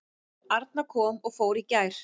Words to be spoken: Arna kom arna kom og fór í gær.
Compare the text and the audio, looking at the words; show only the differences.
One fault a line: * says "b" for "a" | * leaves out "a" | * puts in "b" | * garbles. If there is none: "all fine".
* leaves out "arna kom"